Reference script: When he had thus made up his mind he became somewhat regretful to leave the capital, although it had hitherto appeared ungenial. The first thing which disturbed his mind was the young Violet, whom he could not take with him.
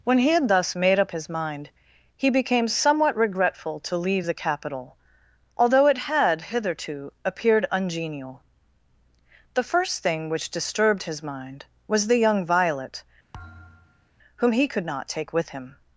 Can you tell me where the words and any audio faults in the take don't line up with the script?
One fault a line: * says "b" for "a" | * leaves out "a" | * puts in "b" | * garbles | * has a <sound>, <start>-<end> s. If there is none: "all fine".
* has a thud, 13.3-14.1 s